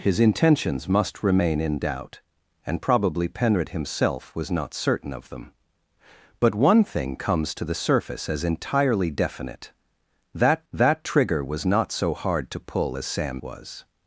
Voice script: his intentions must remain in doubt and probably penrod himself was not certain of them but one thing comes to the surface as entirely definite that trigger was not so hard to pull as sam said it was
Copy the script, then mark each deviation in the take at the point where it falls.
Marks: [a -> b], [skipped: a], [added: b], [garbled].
his intentions must remain in doubt and probably penrod himself was not certain of them but one thing comes to the surface as entirely definite that [added: that] trigger was not so hard to pull as sam [skipped: said it] was